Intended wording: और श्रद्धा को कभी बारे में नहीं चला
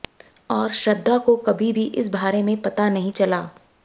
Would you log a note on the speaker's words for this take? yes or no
yes